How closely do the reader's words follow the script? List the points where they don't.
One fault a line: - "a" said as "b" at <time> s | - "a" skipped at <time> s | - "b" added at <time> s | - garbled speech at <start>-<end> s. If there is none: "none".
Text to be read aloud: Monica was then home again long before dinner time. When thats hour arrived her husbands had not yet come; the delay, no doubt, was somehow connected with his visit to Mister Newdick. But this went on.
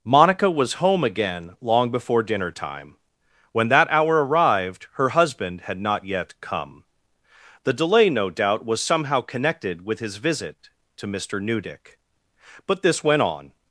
- "then" skipped at 0.8 s
- "thats" said as "that" at 3.7 s
- "husbands" said as "husband" at 5.1 s